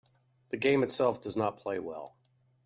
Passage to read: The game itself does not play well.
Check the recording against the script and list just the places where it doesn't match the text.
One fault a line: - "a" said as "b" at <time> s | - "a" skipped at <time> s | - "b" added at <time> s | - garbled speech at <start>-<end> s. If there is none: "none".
none